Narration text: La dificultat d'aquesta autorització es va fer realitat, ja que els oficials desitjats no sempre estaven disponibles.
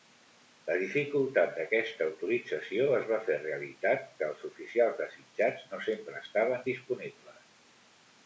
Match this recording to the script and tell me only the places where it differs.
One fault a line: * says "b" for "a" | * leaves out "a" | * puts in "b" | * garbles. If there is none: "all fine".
* leaves out "ja"